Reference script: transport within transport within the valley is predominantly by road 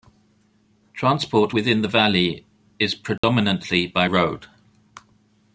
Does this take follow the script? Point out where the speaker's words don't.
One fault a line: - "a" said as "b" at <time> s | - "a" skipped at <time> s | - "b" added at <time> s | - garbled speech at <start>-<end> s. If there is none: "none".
- "transport within" skipped at 1.8 s